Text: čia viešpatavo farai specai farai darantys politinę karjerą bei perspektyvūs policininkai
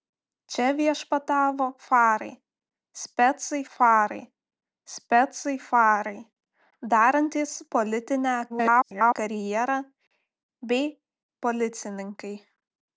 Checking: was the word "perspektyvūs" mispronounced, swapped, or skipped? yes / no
yes